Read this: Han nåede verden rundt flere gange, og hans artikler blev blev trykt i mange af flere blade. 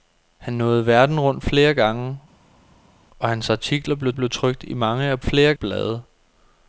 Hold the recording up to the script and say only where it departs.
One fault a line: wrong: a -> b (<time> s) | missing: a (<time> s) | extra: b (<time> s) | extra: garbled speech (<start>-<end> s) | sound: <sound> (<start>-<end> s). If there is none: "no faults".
no faults